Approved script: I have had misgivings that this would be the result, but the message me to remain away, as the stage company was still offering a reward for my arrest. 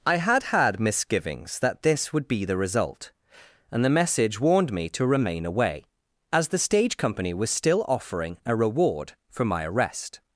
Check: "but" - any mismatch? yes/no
yes